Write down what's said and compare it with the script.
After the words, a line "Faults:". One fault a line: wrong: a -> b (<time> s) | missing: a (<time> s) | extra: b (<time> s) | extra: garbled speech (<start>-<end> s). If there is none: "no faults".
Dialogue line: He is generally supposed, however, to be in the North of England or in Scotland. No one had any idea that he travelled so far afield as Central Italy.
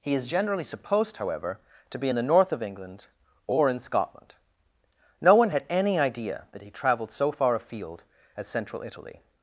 He is generally supposed, however, to be in the North of England or in Scotland. No one had any idea that he travelled so far afield as Central Italy.
Faults:
no faults